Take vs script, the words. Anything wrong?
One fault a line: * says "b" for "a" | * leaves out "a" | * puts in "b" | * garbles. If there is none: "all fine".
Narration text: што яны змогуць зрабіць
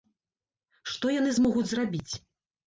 all fine